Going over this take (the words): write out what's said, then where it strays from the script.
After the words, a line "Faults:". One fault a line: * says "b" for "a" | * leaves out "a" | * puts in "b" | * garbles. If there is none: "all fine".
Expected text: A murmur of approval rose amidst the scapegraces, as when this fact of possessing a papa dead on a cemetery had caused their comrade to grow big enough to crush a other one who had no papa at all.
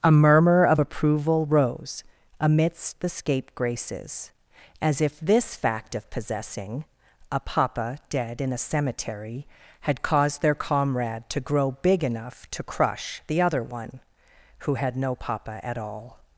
A murmur of approval rose amidst the scapegraces, as if this fact of possessing a papa dead in a cemetery had caused their comrade to grow big enough to crush the other one who had no papa at all.
Faults:
* says "if" for "when"
* says "in" for "on"
* says "the" for "a"